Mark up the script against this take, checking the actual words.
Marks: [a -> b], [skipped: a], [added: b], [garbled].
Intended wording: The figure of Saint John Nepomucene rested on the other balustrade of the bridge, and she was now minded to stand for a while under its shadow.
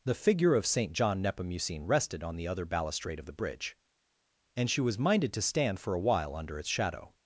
The figure of Saint John Nepomucene rested on the other balustrade of the bridge, and she was [skipped: now] minded to stand for a while under its shadow.